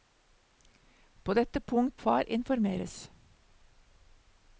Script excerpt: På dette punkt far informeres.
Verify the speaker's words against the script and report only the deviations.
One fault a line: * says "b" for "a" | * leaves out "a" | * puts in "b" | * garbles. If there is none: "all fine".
all fine